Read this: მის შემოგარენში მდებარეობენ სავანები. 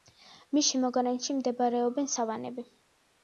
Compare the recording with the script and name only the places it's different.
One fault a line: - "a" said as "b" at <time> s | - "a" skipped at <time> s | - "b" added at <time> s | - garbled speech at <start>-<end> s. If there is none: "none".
none